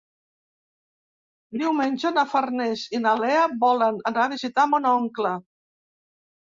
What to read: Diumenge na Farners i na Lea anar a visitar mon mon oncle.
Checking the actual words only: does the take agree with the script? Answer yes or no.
no